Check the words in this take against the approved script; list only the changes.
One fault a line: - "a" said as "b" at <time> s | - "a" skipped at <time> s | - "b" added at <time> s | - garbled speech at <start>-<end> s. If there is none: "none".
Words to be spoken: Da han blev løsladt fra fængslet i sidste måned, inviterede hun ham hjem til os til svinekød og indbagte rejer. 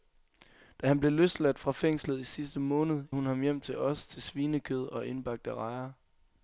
- "inviterede" skipped at 3.0 s